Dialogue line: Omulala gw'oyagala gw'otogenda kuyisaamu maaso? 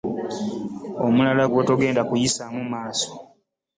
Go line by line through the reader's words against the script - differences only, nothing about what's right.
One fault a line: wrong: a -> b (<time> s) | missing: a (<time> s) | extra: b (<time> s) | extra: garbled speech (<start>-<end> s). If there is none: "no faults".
missing: gw'oyagala (1.4 s)